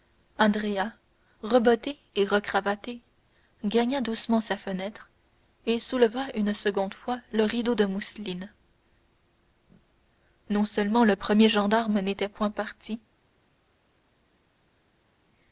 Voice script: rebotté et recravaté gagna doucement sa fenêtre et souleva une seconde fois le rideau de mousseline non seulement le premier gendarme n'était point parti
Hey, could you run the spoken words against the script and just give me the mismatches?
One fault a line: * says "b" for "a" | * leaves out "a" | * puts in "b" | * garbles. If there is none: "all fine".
all fine